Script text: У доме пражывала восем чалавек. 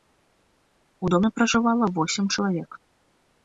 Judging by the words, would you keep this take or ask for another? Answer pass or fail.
pass